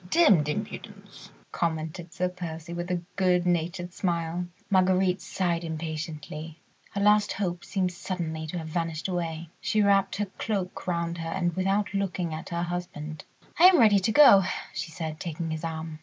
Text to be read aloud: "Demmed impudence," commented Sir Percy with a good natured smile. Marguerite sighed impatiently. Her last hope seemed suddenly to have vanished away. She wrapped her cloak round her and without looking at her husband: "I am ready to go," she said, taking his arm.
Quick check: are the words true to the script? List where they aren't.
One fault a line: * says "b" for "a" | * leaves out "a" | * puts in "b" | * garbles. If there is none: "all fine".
all fine